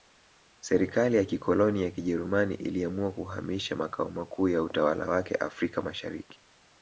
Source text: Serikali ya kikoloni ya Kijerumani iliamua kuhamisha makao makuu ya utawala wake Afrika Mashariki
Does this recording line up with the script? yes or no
yes